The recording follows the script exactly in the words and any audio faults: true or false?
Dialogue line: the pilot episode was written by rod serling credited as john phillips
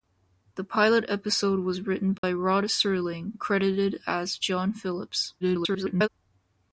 false